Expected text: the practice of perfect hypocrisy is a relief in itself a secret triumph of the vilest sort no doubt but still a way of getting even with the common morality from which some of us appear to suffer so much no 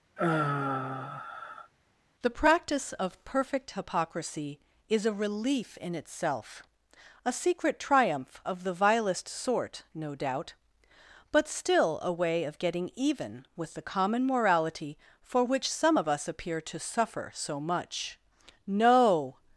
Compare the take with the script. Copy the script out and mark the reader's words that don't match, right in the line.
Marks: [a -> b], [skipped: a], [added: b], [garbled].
the practice of perfect hypocrisy is a relief in itself a secret triumph of the vilest sort no doubt but still a way of getting even with the common morality [from -> for] which some of us appear to suffer so much no